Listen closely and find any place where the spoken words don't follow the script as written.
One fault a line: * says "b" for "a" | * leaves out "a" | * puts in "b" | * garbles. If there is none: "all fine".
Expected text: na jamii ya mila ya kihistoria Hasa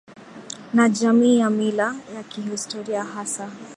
all fine